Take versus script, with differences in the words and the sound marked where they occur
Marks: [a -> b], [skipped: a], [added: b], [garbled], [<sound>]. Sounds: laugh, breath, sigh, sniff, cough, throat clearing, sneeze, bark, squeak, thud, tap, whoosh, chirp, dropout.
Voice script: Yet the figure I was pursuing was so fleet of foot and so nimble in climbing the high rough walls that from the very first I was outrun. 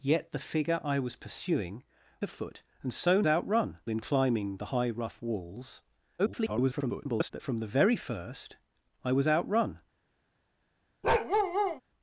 Yet the figure I was pursuing [skipped: was so fleet] of foot and so [nimble -> outrun] in climbing the high rough walls [garbled] that from the very first I was outrun. [bark]